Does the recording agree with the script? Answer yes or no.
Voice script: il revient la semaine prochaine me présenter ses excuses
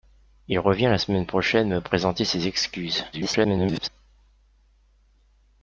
no